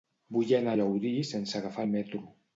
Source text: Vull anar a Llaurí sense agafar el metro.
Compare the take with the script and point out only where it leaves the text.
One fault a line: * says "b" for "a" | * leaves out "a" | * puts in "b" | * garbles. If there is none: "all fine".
all fine